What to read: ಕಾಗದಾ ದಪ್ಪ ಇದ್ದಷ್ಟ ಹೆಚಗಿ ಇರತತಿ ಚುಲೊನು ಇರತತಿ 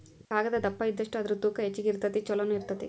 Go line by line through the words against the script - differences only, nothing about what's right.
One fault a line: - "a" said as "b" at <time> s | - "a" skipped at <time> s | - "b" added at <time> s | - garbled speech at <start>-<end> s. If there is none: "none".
- "ಅದರ ತೂಕಾ" added at 1.2 s